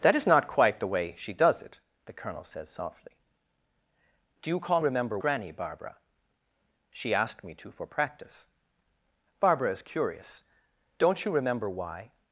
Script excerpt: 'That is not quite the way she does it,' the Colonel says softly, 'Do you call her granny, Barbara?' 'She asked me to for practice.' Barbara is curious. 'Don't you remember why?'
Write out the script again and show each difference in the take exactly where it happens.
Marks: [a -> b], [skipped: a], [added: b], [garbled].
'That is not quite the way she does it,' the Colonel says softly, 'Do you call [her -> remember] granny, Barbara?' 'She asked me to for practice.' Barbara is curious. 'Don't you remember why?'